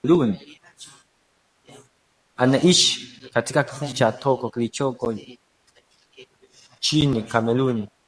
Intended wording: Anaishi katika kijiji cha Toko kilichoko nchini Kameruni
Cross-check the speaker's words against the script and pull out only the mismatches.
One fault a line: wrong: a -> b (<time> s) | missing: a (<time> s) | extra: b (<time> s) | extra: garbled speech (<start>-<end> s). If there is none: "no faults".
no faults